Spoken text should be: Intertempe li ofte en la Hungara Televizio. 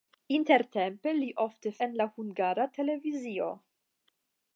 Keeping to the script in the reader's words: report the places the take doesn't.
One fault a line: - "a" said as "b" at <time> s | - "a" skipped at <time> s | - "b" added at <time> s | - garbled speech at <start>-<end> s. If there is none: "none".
none